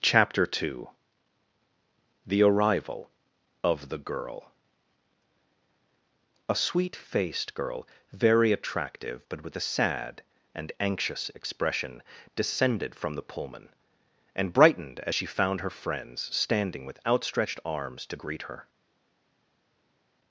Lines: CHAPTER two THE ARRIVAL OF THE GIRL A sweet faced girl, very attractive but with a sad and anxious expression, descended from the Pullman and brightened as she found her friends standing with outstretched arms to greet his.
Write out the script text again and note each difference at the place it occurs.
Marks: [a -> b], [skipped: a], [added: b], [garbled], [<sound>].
CHAPTER two THE ARRIVAL OF THE GIRL A sweet faced girl, very attractive but with a sad and anxious expression, descended from the Pullman and brightened as she found her friends standing with outstretched arms to greet [his. -> her]